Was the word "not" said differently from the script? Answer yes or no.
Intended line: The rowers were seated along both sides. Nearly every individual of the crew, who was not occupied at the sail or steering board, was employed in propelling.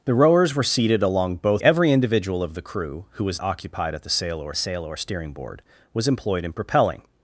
yes